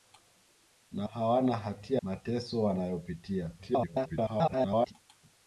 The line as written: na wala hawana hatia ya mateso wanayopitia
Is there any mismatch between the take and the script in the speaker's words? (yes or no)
yes